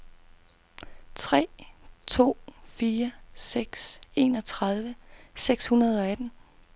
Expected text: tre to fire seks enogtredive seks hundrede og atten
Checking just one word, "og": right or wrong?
right